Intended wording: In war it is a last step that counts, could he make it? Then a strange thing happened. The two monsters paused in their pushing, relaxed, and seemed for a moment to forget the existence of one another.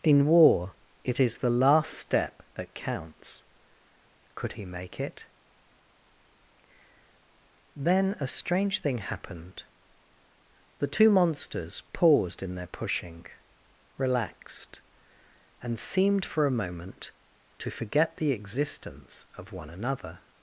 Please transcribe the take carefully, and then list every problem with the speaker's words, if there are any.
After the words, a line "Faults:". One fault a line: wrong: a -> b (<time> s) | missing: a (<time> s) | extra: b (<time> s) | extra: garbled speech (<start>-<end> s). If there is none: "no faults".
In war it is the last step that counts, could he make it? Then a strange thing happened. The two monsters paused in their pushing, relaxed, and seemed for a moment to forget the existence of one another.
Faults:
wrong: a -> the (1.4 s)